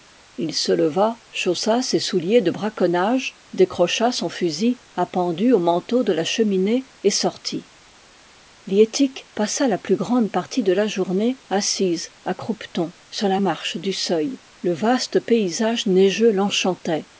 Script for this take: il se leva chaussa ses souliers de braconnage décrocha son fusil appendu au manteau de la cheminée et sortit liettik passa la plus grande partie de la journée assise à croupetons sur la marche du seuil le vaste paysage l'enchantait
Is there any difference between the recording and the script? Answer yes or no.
yes